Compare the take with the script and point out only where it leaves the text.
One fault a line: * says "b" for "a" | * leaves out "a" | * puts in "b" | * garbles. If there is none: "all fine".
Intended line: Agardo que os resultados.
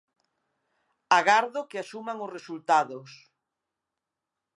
* puts in "asuman"